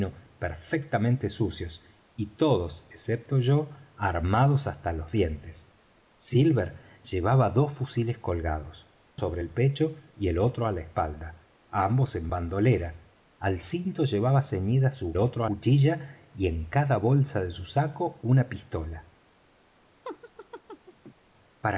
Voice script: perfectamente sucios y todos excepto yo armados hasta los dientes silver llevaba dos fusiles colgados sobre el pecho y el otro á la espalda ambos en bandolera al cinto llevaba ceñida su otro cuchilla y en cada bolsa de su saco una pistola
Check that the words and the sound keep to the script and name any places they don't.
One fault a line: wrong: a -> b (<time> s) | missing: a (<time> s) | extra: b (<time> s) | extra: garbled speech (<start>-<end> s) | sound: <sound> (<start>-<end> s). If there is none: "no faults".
sound: laugh (20.0-21.1 s)